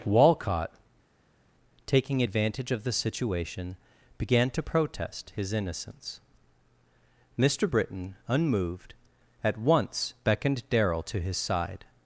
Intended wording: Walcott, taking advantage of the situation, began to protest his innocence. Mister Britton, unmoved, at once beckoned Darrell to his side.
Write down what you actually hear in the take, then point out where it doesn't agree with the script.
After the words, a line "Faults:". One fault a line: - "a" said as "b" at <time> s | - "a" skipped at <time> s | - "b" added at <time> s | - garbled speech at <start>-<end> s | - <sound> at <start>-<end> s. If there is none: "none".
Walcott, taking advantage of the situation, began to protest his innocence. Mister Britton, unmoved, at once beckoned Darrell to his side.
Faults:
none